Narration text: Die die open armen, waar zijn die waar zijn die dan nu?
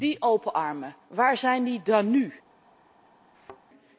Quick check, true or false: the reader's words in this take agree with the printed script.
false